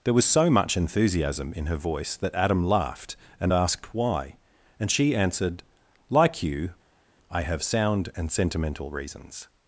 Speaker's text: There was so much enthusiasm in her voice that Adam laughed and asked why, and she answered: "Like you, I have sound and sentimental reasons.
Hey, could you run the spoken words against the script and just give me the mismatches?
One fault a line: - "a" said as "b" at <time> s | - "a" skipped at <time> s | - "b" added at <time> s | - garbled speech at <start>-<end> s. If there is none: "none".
none